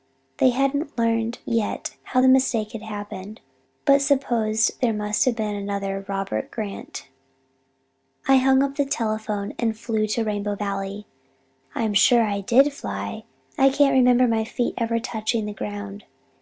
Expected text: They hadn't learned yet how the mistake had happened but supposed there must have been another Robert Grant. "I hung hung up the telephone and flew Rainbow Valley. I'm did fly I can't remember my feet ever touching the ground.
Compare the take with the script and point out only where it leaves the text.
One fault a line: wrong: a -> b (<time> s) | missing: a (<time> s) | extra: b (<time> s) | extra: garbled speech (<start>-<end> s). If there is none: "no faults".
missing: hung (8.6 s)
extra: to (10.1 s)
extra: sure I (11.9 s)